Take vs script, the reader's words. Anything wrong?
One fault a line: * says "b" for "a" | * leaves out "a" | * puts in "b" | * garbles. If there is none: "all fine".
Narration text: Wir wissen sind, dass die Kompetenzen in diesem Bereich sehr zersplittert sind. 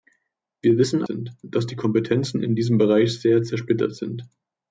all fine